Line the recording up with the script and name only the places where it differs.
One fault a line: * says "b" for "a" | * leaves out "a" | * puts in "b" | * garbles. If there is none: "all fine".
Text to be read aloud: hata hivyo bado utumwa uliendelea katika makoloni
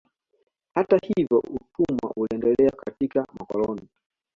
* leaves out "bado"